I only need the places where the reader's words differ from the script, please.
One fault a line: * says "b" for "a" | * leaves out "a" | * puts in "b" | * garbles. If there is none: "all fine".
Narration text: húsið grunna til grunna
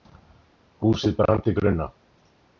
* says "brann" for "grunna"